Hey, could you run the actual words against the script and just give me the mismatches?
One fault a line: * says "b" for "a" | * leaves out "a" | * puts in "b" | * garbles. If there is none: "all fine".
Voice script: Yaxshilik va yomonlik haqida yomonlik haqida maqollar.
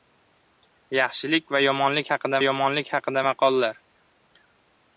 all fine